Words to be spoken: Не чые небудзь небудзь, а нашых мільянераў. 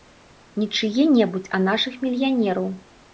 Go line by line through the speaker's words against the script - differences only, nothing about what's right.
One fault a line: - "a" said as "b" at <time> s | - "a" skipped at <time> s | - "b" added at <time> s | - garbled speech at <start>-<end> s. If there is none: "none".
- "небудзь" skipped at 1.5 s